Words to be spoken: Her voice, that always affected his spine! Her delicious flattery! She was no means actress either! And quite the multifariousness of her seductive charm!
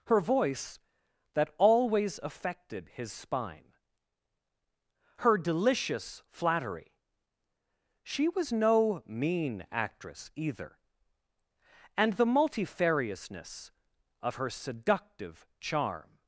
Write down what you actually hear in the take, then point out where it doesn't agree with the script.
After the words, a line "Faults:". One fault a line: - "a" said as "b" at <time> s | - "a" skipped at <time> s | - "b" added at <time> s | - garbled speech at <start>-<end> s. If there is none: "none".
Her voice, that always affected his spine! Her delicious flattery! She was no mean actress either! And the multifariousness of her seductive charm!
Faults:
- "means" said as "mean" at 9.0 s
- "quite" skipped at 12.1 s